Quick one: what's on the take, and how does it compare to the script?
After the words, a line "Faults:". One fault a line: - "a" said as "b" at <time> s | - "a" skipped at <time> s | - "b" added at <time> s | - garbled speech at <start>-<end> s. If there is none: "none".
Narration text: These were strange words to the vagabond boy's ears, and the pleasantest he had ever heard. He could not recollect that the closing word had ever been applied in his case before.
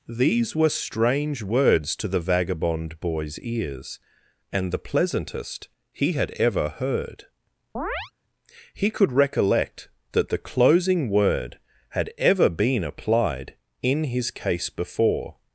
These were strange words to the vagabond boy's ears, and the pleasantest he had ever heard. He could recollect that the closing word had ever been applied in his case before.
Faults:
- "not" skipped at 9.1 s